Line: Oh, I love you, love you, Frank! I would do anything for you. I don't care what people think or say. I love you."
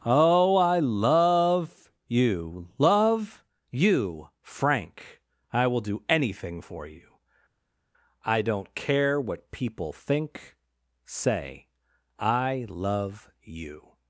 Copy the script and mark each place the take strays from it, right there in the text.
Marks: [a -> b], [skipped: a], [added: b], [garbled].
Oh, I love you, love you, Frank! I [would -> will] do anything for you. I don't care what people think [skipped: or] say. I love you."